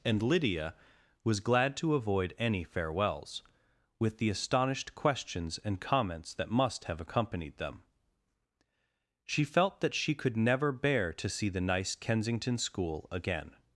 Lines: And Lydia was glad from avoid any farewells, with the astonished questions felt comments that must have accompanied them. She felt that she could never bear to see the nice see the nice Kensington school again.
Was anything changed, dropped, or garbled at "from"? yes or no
yes